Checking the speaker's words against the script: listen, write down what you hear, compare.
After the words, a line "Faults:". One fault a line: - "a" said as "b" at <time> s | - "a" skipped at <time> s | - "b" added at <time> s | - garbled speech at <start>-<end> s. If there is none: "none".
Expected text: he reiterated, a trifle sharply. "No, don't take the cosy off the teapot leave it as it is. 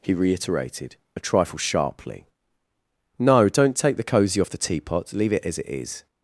he reiterated, a trifle sharply. "No, don't take the cosy off the teapot leave it as it is.
Faults:
none